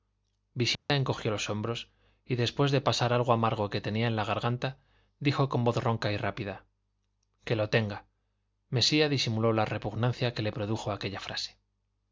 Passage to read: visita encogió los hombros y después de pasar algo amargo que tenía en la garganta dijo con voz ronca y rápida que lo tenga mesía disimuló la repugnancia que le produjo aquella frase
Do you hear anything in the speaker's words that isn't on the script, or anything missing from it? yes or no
no